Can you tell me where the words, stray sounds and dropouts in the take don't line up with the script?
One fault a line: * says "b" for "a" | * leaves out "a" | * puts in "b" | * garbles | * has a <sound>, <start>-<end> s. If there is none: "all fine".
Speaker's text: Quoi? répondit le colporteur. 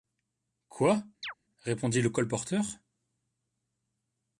* has a chirp, 1.2-1.3 s